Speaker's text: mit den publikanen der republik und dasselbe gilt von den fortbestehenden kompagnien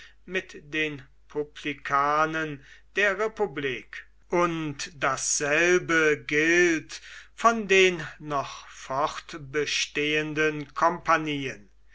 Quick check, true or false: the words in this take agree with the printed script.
false